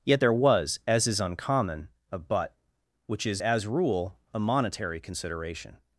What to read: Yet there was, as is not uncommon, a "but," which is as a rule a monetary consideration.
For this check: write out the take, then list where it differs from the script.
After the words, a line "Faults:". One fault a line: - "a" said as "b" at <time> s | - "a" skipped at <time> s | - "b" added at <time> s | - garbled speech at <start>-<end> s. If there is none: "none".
Yet there was, as is uncommon, a "but," which is as rule a monetary consideration.
Faults:
- "not" skipped at 1.2 s
- "a" skipped at 3.7 s